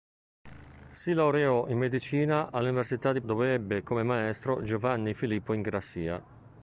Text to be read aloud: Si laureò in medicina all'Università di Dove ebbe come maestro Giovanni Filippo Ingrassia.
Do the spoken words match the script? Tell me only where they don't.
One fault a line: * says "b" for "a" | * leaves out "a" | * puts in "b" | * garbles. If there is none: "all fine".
all fine